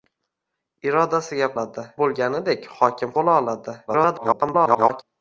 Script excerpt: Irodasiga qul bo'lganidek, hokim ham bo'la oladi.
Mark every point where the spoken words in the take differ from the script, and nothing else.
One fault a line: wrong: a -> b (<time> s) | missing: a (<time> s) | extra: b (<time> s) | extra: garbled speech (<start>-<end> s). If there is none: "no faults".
wrong: qul -> oladi (1.5 s)
missing: ham (3.2 s)
extra: garbled speech (3.9-5.0 s)